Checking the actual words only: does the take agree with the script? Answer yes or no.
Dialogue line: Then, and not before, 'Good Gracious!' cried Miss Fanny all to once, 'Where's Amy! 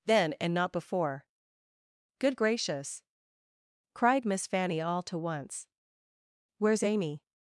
yes